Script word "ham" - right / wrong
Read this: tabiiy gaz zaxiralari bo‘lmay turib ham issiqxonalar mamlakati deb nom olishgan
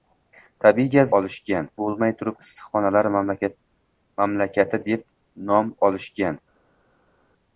wrong